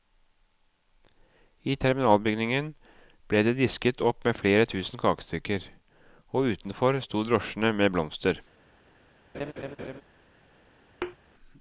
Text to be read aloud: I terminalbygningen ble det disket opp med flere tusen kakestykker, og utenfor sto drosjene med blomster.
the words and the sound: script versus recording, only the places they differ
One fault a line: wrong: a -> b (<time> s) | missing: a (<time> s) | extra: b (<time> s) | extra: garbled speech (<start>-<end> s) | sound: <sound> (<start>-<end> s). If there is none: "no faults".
sound: laugh (9.3-10.0 s)
sound: thud (11.0-11.2 s)